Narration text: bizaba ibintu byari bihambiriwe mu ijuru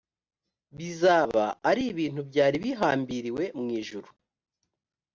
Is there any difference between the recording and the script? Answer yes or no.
yes